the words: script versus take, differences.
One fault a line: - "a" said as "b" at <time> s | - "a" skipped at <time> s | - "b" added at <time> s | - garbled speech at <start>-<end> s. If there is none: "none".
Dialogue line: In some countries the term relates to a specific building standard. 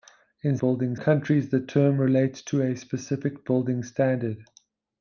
- "some" said as "building" at 0.6 s